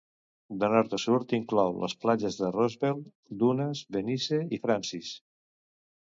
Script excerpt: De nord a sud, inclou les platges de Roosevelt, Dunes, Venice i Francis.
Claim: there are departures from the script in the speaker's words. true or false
false